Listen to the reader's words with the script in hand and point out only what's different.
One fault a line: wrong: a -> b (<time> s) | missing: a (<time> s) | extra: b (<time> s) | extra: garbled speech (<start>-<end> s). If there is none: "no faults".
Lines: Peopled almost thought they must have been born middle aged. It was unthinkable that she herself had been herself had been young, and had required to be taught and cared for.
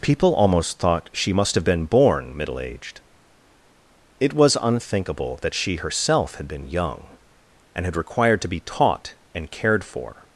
wrong: Peopled -> People (0.0 s)
wrong: they -> she (1.1 s)
missing: herself had been (6.7 s)